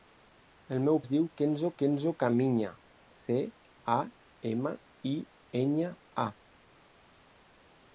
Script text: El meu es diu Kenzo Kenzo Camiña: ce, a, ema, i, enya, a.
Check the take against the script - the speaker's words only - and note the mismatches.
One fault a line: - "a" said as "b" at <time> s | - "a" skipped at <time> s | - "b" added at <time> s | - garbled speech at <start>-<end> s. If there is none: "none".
none